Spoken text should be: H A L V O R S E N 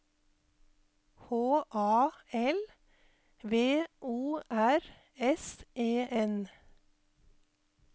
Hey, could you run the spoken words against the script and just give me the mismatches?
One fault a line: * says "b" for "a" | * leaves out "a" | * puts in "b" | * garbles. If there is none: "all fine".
all fine